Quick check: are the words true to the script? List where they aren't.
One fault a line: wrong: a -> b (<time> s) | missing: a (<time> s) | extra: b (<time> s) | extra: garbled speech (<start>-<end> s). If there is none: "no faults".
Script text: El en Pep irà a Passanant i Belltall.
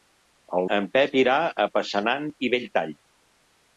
no faults